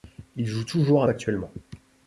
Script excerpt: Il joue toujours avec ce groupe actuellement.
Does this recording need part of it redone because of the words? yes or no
yes